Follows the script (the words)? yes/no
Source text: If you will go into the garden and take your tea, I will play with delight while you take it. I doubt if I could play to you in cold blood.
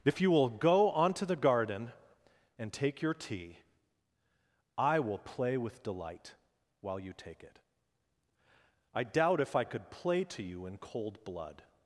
no